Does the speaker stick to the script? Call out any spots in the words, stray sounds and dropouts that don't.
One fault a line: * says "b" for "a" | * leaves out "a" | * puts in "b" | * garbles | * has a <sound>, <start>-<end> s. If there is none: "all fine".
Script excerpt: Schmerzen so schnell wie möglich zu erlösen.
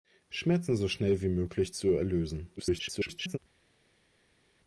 * garbles